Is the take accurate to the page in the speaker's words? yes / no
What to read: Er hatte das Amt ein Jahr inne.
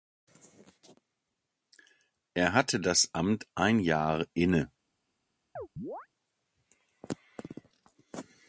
yes